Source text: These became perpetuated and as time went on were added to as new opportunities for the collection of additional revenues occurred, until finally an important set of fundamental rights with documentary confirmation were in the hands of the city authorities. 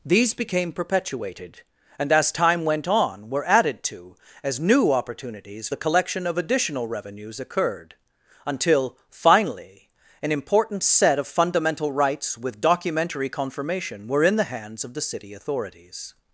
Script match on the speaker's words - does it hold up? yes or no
no